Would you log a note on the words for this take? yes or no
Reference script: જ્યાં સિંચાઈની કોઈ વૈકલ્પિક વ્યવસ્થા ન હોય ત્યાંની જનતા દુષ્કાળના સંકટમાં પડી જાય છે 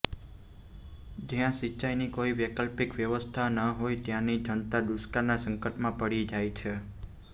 no